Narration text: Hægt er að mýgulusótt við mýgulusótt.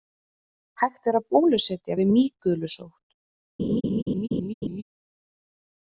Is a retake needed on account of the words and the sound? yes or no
yes